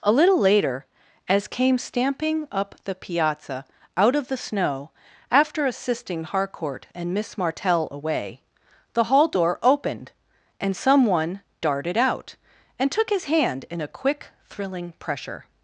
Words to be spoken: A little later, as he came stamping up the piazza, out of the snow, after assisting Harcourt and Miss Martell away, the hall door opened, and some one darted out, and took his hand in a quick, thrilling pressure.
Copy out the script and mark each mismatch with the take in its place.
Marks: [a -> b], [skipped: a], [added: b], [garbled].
A little later, as [skipped: he] came stamping up the piazza, out of the snow, after assisting Harcourt and Miss Martell away, the hall door opened, and some one darted out, and took his hand in a quick, thrilling pressure.